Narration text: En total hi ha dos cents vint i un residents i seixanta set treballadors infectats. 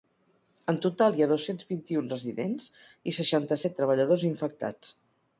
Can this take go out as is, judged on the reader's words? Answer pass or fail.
pass